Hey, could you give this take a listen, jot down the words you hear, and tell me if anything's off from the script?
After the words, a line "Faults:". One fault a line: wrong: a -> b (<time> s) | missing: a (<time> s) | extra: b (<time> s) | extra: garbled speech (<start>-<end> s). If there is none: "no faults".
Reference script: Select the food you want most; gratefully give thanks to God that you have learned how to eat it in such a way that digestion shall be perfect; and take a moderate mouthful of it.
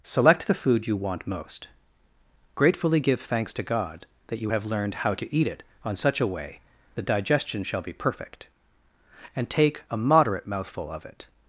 Select the food you want most; gratefully give thanks to God that you have learned how to eat it on such a way that digestion shall be perfect; and take a moderate mouthful of it.
Faults:
wrong: in -> on (5.8 s)